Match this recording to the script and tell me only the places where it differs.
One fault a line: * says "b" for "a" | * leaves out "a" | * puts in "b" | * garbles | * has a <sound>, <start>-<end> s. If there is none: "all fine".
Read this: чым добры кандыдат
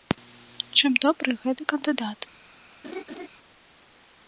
* puts in "гэты"
* has a laugh, 2.8-3.3 s